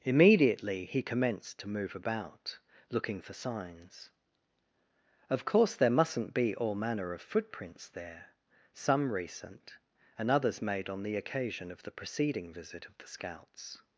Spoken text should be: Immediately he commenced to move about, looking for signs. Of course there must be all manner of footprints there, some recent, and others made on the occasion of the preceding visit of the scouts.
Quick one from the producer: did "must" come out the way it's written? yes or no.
no